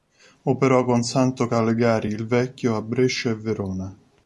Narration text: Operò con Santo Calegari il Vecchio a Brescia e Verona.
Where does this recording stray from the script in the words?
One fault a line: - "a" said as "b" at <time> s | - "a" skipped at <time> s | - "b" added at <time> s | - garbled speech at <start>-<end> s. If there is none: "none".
none